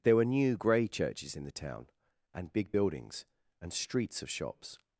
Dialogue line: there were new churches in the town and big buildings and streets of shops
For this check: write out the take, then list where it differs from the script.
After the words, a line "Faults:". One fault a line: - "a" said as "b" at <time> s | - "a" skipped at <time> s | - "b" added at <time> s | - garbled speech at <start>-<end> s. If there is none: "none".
there were new grey churches in the town and big buildings and streets of shops
Faults:
- "grey" added at 0.5 s